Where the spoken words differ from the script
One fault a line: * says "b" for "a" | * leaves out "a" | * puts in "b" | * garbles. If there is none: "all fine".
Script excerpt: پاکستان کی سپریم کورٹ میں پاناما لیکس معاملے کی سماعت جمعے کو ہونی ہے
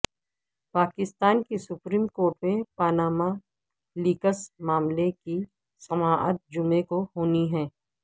all fine